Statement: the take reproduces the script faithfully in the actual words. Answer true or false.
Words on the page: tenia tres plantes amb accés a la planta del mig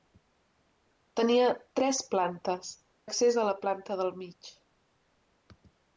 false